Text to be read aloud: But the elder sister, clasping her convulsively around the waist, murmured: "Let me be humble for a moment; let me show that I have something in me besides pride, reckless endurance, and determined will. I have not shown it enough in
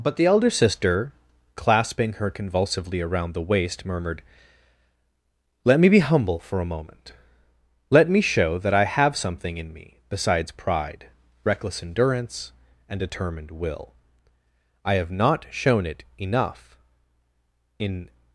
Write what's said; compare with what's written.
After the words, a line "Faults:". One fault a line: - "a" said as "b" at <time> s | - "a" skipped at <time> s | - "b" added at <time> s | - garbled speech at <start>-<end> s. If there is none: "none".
But the elder sister, clasping her convulsively around the waist, murmured: "Let me be humble for a moment; let me show that I have something in me besides pride, reckless endurance, and determined will. I have not shown it enough in
Faults:
none